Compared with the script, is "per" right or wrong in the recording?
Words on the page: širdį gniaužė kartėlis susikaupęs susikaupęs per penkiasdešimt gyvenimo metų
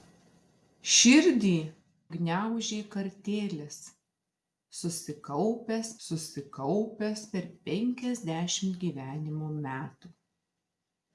right